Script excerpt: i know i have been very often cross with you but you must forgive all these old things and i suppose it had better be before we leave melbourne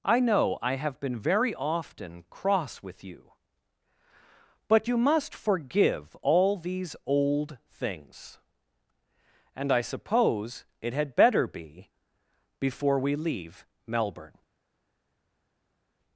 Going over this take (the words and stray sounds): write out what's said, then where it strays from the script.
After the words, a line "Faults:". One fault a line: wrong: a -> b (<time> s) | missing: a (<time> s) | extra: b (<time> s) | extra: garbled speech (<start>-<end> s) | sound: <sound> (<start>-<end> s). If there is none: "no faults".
i know i have been very often cross with you but you must forgive all these old things and i suppose it had better be before we leave melbourne
Faults:
no faults